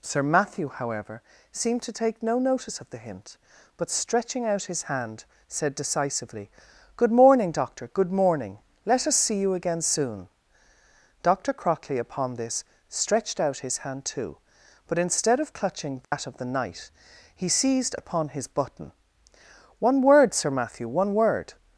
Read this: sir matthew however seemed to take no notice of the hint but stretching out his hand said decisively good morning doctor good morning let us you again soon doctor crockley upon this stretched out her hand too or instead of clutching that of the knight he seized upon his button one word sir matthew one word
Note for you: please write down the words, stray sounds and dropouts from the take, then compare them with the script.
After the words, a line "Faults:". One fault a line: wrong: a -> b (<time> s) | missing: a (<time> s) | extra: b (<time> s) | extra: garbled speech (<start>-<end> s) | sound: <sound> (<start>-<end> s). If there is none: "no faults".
sir matthew however seemed to take no notice of the hint but stretching out his hand said decisively good morning doctor good morning let us see you again soon doctor crockley upon this stretched out his hand too but instead of clutching that of the knight he seized upon his button one word sir matthew one word
Faults:
extra: see (9.2 s)
wrong: her -> his (13.6 s)
wrong: or -> but (14.9 s)
sound: dropout (16.0-16.1 s)